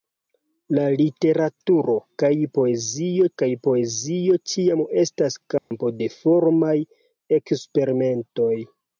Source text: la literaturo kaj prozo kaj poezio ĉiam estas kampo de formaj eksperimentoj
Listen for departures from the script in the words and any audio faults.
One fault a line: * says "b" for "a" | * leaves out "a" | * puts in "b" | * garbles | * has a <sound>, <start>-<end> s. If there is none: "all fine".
* says "poezio" for "prozo"
* has a dropout, 5.6-5.7 s